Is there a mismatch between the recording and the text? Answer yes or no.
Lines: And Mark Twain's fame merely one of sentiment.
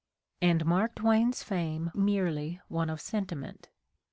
no